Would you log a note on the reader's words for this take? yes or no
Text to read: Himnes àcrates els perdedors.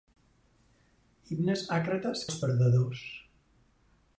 no